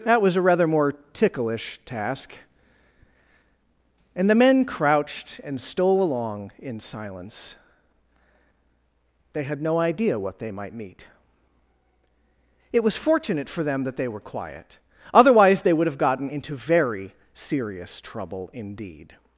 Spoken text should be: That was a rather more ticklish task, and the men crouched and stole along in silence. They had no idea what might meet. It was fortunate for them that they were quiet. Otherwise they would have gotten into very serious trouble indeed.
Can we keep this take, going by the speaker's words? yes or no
no